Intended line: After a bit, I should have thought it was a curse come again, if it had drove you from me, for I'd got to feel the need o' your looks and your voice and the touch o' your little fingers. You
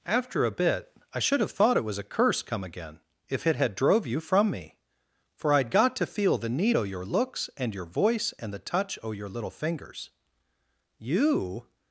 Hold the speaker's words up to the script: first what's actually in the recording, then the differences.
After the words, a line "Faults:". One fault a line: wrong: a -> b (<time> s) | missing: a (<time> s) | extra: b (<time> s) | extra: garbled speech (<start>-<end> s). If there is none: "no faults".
After a bit, I should have thought it was a curse come again, if it had drove you from me, for I'd got to feel the need o' your looks and your voice and the touch o' your little fingers. You
Faults:
no faults